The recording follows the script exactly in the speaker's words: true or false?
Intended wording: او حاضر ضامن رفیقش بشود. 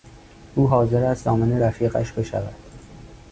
false